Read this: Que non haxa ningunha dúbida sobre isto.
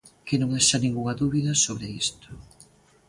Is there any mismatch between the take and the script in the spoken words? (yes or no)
no